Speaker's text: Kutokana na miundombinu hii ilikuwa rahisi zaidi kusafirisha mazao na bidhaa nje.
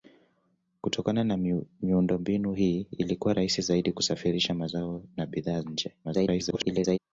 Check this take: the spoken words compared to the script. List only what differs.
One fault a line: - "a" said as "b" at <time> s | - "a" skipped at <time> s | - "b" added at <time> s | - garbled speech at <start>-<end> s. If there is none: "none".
- garbled speech at 6.0-7.0 s